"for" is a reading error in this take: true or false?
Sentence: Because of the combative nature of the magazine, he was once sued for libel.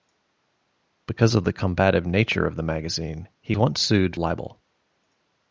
true